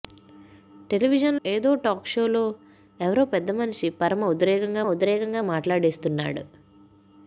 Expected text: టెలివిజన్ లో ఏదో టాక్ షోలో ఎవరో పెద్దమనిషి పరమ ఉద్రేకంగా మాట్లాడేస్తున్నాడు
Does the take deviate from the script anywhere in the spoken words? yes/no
yes